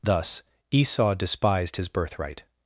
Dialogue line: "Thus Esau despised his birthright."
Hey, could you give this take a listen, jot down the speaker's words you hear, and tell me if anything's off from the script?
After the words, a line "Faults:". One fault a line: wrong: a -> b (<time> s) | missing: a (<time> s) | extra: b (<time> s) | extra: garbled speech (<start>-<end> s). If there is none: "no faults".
"Thus Esau despised his birthright."
Faults:
no faults